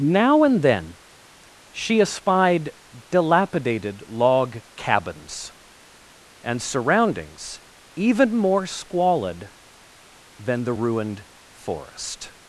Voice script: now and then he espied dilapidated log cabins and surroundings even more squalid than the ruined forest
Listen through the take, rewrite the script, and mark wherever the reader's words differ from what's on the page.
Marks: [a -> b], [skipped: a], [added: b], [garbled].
now and then [he -> she] espied dilapidated log cabins and surroundings even more squalid than the ruined forest